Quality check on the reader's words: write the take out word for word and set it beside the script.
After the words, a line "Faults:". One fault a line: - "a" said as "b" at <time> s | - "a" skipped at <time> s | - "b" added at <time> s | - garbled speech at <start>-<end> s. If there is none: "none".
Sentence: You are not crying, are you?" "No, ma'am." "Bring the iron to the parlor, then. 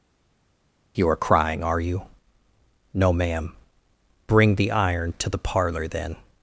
You are crying, are you?" "No, ma'am." "Bring the iron to the parlor, then.
Faults:
- "not" skipped at 1.2 s